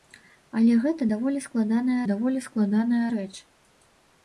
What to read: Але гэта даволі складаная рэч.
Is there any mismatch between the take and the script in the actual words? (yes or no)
yes